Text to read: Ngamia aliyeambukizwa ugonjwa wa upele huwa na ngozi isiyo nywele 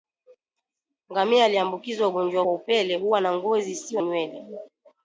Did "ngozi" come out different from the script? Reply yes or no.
no